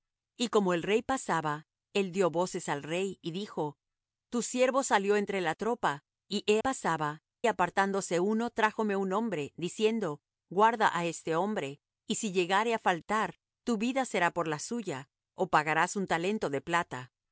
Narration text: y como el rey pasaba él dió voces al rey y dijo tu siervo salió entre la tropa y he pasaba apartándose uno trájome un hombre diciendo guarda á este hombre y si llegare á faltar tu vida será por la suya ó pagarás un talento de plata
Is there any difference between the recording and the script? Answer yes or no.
no